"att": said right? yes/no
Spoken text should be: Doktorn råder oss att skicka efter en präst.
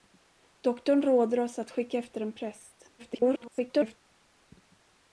yes